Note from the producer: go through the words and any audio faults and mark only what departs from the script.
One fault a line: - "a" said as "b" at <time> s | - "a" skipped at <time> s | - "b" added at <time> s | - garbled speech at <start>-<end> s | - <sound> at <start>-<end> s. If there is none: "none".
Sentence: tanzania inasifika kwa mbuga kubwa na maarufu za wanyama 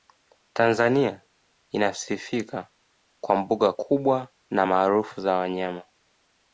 none